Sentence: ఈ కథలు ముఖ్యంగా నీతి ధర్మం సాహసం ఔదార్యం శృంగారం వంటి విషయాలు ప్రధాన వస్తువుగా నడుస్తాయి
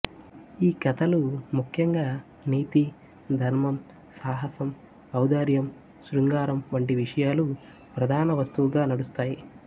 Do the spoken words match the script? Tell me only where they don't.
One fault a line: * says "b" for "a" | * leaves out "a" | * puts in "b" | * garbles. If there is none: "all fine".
all fine